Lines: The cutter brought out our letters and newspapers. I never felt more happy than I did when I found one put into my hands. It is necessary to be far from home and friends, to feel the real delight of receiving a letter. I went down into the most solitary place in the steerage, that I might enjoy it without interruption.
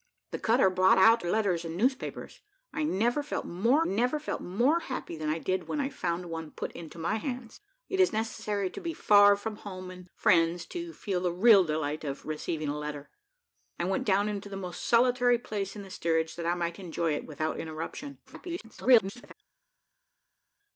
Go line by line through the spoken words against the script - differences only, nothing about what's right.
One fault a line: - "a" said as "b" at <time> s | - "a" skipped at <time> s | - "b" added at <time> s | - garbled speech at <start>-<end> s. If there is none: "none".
- "our" skipped at 1.2 s
- "never felt more" added at 3.8 s
- garbled speech at 18.3-19.3 s